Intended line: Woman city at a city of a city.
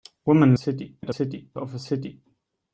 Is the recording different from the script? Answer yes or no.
no